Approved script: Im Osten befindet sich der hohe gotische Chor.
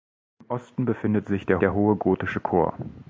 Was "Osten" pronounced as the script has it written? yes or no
yes